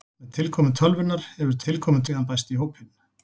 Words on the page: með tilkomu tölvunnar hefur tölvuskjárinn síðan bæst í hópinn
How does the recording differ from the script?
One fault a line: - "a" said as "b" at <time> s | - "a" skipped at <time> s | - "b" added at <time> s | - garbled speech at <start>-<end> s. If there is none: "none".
- "tölvuskjárinn" said as "tilkomu" at 1.7 s